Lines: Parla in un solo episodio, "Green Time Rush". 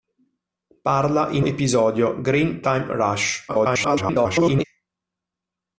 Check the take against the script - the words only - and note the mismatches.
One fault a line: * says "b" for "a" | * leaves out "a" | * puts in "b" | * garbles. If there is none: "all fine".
* leaves out "un solo"
* garbles